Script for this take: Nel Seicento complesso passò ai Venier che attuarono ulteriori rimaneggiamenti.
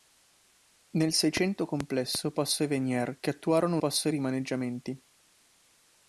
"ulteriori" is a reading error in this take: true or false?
true